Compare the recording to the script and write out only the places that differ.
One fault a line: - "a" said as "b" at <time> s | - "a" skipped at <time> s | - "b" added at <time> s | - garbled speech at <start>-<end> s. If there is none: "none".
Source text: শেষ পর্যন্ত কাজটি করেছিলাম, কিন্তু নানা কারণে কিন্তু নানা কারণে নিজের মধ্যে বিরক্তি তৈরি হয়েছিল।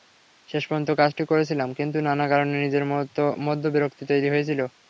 - "কিন্তু নানা কারণে" skipped at 2.5 s